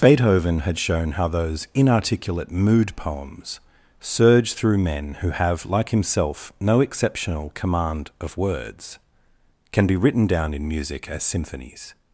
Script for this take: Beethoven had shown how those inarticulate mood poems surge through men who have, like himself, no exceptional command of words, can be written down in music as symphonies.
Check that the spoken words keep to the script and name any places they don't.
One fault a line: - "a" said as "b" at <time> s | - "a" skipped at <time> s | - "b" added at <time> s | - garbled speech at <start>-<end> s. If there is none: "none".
none